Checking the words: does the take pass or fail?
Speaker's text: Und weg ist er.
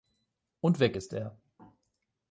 pass